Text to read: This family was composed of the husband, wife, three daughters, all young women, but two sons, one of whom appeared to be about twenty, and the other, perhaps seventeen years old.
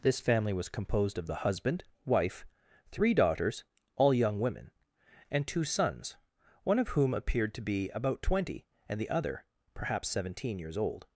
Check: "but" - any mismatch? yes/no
yes